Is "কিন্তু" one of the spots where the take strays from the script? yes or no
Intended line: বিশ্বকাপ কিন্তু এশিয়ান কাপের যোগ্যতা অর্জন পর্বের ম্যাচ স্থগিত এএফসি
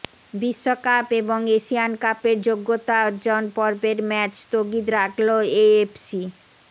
yes